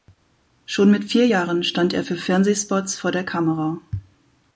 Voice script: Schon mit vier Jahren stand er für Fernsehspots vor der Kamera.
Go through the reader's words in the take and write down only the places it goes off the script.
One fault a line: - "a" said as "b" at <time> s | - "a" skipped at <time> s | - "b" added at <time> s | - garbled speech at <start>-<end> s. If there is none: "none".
none